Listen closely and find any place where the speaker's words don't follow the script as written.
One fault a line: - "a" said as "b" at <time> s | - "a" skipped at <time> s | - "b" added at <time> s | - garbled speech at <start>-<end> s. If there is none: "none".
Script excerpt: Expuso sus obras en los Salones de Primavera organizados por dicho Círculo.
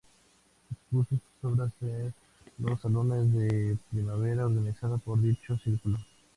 none